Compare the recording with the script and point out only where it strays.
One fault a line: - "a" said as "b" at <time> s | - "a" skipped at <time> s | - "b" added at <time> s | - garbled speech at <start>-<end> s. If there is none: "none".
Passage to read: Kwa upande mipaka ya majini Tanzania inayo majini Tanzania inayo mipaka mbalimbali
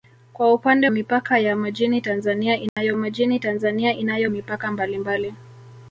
none